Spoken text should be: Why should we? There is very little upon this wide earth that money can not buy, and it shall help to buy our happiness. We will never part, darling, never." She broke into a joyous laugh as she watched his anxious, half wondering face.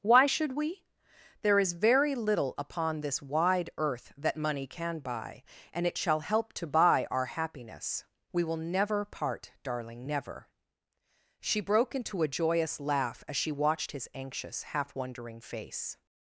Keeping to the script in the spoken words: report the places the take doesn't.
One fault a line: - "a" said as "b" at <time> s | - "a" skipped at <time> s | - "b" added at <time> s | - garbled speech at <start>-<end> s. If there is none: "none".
- "not" skipped at 5.0 s